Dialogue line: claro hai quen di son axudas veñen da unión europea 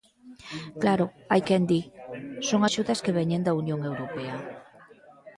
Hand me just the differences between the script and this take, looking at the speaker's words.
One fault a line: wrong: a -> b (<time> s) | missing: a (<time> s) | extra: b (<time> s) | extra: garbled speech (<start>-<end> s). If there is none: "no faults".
extra: que (3.0 s)